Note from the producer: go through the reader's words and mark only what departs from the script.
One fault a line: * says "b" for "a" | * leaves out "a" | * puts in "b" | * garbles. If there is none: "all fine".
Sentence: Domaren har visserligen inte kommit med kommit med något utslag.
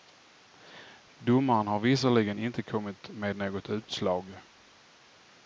* leaves out "kommit med"